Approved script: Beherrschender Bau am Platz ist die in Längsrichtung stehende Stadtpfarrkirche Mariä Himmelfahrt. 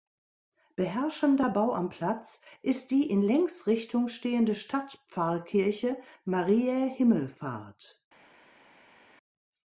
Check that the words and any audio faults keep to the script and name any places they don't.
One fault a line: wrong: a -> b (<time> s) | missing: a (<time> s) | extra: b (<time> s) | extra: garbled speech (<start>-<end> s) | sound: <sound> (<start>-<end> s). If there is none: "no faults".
no faults